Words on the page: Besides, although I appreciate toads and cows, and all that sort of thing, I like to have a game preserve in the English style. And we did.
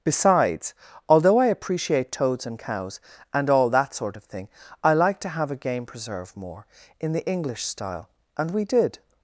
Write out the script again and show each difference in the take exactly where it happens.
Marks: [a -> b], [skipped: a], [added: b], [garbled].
Besides, although I appreciate toads and cows, and all that sort of thing, I like to have a game preserve [added: more] in the English style. And we did.